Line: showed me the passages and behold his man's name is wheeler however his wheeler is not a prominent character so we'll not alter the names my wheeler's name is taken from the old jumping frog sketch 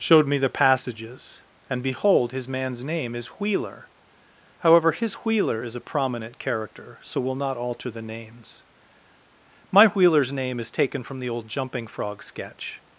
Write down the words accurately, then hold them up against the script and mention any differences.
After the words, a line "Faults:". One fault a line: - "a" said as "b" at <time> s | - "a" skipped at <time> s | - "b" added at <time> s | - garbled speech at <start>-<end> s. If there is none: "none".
showed me the passages and behold his man's name is wheeler however his wheeler is a prominent character so we'll not alter the names my wheeler's name is taken from the old jumping frog sketch
Faults:
- "not" skipped at 5.8 s